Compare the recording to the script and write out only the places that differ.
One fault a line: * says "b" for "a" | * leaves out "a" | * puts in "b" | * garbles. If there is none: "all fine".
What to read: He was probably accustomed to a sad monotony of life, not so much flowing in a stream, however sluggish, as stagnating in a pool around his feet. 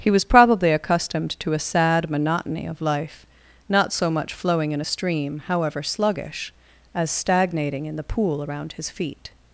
* says "the" for "a"